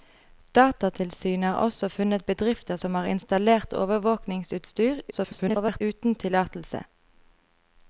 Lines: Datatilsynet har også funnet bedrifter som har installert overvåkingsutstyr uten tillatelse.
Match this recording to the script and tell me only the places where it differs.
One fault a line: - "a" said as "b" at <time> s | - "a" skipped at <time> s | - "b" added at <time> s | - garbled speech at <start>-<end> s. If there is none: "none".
- garbled speech at 5.1-5.8 s